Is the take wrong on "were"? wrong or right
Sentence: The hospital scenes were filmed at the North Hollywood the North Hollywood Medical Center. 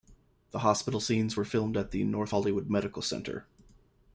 right